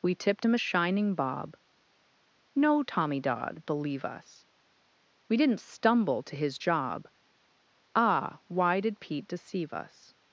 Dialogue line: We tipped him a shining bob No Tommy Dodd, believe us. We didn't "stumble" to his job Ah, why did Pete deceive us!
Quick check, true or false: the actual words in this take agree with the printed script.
true